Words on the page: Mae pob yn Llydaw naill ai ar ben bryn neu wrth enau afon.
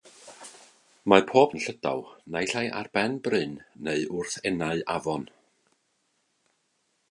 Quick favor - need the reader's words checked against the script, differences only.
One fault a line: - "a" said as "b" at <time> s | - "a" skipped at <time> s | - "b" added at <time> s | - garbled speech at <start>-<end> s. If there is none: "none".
none